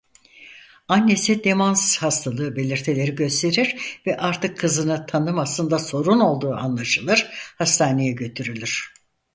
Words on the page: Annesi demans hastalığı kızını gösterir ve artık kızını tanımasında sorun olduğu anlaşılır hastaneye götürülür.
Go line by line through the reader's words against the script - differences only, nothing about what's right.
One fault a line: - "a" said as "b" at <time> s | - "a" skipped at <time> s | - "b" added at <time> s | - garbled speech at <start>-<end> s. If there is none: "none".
- "kızını" said as "belirtileri" at 2.5 s